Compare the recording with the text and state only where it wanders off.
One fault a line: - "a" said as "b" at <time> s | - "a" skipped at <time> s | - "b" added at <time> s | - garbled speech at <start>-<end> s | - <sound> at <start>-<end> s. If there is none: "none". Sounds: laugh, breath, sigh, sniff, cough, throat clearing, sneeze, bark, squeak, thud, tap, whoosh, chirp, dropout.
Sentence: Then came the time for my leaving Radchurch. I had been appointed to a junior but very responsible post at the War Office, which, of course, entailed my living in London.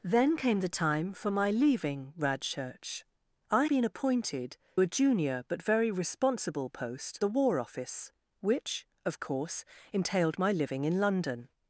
- "had" skipped at 3.6 s
- "to" skipped at 4.6 s
- "at" skipped at 7.2 s